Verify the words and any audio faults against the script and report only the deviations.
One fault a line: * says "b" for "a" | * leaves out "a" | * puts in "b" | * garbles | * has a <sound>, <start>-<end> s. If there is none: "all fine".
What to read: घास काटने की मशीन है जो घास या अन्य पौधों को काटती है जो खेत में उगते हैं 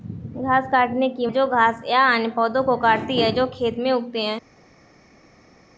* leaves out "मशीन है"